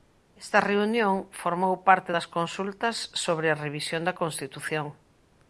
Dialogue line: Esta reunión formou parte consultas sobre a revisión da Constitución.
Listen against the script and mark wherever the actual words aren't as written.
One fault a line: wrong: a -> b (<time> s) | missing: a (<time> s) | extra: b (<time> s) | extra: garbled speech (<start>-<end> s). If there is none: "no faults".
extra: das (2.1 s)